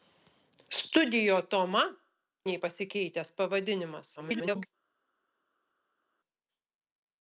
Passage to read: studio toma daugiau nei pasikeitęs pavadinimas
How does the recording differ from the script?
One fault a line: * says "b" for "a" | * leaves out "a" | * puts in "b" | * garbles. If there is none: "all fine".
* leaves out "daugiau"
* garbles